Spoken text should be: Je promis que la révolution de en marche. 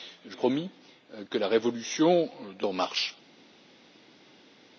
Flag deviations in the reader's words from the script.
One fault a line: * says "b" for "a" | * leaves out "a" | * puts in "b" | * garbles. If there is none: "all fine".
all fine